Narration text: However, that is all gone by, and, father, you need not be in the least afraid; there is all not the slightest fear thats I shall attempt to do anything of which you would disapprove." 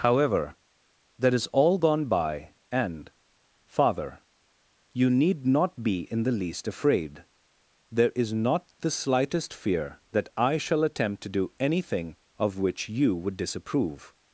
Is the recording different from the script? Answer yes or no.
yes